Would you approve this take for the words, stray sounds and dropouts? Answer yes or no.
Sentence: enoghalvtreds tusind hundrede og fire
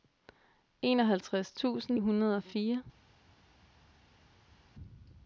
yes